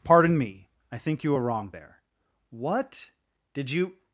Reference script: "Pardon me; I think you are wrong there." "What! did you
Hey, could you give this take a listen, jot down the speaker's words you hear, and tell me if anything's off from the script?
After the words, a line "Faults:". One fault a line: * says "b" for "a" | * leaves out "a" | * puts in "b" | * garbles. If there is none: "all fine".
"Pardon me; I think you are wrong there." "What! did you
Faults:
all fine